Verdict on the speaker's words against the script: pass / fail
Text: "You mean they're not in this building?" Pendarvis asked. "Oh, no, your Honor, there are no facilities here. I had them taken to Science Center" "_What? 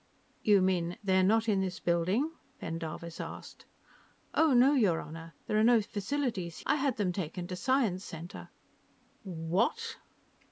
fail